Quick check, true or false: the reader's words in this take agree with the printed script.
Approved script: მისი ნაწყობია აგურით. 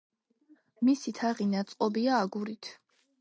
false